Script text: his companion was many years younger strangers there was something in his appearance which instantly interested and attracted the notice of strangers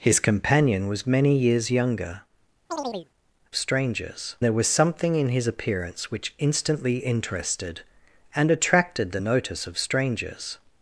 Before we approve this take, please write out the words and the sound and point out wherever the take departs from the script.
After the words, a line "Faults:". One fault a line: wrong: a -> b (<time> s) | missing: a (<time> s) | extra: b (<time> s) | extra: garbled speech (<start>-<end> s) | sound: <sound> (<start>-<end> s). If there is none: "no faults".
his companion was many years younger strangers there was something in his appearance which instantly interested and attracted the notice of strangers
Faults:
sound: chirp (2.7-3.1 s)